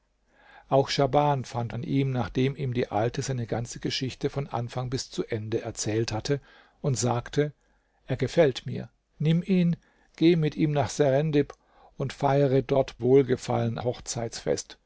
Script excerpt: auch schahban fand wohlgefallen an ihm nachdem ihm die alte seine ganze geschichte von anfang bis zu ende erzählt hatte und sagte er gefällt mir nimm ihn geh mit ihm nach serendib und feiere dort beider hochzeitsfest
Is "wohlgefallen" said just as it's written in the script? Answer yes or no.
no